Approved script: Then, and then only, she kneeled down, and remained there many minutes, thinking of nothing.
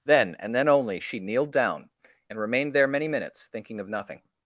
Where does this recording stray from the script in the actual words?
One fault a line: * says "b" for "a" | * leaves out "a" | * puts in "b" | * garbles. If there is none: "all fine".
all fine